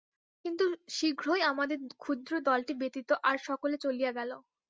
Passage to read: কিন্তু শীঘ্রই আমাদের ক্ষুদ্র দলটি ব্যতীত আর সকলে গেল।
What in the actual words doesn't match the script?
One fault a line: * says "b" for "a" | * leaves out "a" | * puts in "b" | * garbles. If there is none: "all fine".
* puts in "চলিয়া"